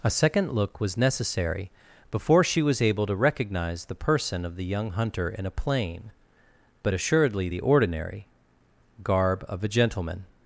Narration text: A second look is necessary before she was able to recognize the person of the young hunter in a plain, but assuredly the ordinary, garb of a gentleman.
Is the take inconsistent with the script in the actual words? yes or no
yes